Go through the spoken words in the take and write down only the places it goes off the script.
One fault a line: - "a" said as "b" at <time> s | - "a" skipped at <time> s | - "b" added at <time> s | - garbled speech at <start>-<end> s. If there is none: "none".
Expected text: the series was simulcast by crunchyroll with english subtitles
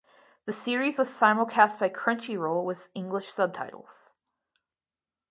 none